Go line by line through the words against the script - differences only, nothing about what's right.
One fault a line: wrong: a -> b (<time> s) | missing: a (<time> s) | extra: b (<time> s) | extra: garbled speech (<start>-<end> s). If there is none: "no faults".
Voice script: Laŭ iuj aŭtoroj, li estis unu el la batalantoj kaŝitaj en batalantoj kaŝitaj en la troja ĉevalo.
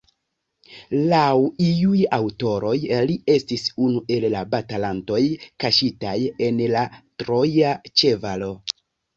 missing: batalantoj kaŝitaj en (6.6 s)